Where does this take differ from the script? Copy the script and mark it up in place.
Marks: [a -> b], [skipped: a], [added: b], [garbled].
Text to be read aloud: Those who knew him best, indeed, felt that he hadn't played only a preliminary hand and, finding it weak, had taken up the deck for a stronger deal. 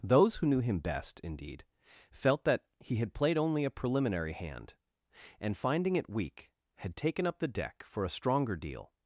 Those who knew him best, indeed, felt that he [hadn't -> had] played only a preliminary hand and, finding it weak, had taken up the deck for a stronger deal.